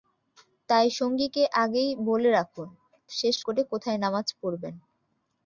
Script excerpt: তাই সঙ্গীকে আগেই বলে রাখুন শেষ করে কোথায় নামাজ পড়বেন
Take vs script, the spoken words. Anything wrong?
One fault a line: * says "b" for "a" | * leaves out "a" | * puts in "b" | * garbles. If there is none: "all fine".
all fine